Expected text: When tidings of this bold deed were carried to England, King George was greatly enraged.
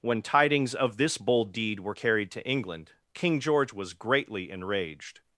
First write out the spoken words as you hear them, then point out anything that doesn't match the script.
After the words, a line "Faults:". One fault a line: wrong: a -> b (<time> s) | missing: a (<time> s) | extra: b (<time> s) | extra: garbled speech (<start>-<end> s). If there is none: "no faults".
When tidings of this bold deed were carried to England, King George was greatly enraged.
Faults:
no faults